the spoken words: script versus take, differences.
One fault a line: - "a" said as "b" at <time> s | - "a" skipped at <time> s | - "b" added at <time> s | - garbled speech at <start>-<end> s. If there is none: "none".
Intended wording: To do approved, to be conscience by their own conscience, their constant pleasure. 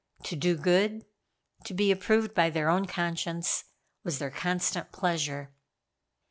- "approved" said as "good" at 0.6 s
- "conscience" said as "approved" at 1.9 s
- "was" added at 4.0 s